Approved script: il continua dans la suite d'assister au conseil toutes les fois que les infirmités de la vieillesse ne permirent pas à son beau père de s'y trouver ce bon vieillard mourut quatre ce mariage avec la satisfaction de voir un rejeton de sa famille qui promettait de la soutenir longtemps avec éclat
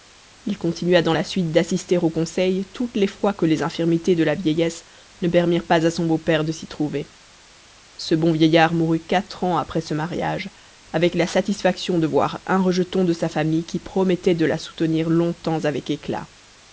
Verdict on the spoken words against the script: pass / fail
fail